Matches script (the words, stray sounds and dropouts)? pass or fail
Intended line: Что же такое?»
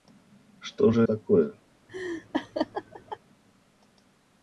fail